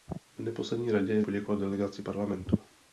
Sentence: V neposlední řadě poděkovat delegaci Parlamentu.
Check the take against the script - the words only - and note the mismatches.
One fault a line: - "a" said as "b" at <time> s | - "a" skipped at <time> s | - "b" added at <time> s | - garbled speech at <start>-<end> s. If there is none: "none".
none